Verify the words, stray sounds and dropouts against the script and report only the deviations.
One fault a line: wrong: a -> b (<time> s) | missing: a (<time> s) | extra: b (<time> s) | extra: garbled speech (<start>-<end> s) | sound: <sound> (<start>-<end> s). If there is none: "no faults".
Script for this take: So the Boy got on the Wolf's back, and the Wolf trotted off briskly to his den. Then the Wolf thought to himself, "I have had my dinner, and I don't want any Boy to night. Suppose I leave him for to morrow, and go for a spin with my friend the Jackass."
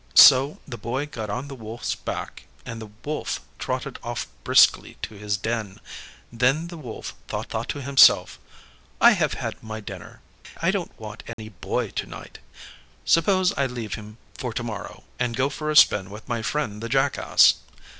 extra: thought (7.5 s)
missing: and (10.2 s)
sound: dropout (11.3-11.4 s)